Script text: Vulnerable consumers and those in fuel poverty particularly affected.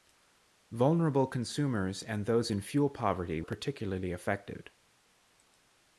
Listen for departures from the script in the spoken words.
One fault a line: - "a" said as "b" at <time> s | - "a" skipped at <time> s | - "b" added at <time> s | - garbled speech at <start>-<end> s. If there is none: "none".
none